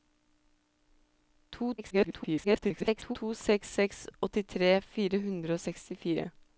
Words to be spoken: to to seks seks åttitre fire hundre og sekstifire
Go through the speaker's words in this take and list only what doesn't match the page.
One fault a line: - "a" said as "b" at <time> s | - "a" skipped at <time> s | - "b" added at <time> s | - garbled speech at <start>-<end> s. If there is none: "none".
- garbled speech at 1.8-3.2 s